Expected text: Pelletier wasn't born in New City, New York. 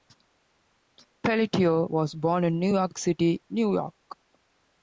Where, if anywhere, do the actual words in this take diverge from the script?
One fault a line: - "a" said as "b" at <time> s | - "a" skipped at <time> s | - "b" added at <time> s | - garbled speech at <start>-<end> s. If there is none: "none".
- "wasn't" said as "was" at 1.9 s
- "York" added at 2.7 s